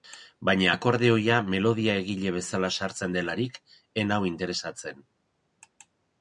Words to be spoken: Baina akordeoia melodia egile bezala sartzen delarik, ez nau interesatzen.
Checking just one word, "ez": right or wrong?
right